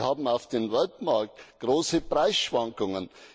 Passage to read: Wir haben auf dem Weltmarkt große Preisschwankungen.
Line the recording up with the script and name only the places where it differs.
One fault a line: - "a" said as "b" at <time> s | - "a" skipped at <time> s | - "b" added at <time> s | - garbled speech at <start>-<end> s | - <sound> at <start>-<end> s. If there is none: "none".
none